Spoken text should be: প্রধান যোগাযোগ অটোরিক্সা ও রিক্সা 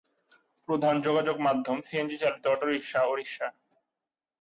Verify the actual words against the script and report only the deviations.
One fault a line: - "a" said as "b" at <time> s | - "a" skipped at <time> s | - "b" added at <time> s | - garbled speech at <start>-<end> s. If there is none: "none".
- "মাধ্যম সিএনজি চালিত" added at 1.5 s